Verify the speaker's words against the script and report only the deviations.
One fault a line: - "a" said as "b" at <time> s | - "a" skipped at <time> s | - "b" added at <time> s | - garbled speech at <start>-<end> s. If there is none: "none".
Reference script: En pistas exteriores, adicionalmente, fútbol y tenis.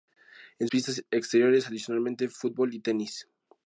none